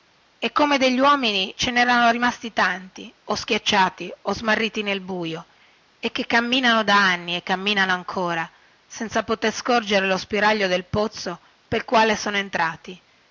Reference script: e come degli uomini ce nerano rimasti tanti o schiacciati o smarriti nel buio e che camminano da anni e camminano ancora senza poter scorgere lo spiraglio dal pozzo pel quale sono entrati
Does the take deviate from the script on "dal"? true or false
true